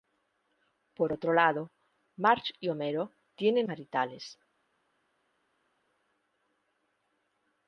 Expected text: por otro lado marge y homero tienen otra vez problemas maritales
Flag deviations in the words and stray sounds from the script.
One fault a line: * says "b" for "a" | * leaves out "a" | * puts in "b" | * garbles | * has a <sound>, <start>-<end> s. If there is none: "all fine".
* leaves out "otra vez problemas"